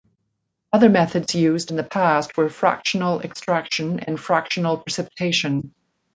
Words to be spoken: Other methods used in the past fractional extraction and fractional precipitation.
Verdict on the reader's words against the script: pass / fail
fail